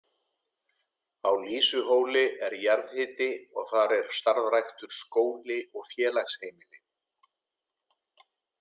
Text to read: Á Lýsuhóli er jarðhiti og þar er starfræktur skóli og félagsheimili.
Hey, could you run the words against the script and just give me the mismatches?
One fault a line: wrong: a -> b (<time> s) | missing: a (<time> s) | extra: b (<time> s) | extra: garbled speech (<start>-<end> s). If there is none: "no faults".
no faults